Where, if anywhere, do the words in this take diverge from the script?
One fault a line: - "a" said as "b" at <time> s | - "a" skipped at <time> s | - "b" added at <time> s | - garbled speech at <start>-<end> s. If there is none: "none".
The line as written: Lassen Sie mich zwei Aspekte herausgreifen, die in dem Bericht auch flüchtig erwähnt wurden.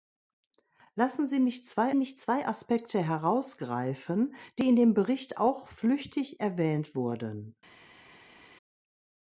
- "mich zwei" added at 1.9 s